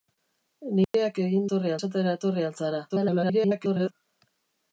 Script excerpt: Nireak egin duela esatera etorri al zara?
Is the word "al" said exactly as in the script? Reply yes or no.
yes